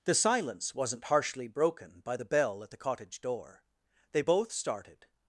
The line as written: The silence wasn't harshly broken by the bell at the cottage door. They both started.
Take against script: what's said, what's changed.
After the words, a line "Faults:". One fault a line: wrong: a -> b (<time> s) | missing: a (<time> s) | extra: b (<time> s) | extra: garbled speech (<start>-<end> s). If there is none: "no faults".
The silence wasn't harshly broken by the bell at the cottage door. They both started.
Faults:
no faults